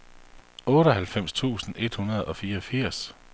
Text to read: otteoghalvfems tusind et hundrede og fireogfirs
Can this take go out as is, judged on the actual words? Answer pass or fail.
pass